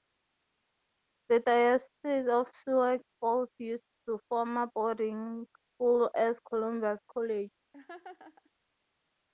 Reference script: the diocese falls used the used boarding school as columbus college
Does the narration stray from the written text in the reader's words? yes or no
yes